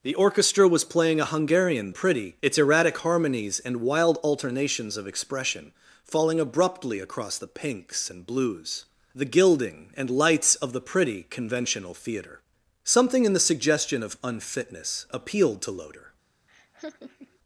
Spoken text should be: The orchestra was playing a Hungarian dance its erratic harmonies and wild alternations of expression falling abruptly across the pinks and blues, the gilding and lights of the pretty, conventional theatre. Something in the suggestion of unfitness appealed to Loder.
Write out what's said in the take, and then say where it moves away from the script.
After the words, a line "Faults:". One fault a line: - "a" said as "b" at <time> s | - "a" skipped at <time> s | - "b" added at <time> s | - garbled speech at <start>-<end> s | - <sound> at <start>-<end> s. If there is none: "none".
The orchestra was playing a Hungarian pretty its erratic harmonies and wild alternations of expression falling abruptly across the pinks and blues, the gilding and lights of the pretty, conventional theatre. Something in the suggestion of unfitness appealed to Loder.
Faults:
- "dance" said as "pretty" at 1.9 s
- laugh at 16.5-17.4 s